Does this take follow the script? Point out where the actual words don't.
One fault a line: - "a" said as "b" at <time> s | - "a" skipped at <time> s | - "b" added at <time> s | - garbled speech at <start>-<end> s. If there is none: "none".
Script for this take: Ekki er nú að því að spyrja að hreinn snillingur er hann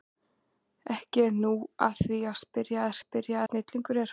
- "hreinn" said as "spyrja" at 3.0 s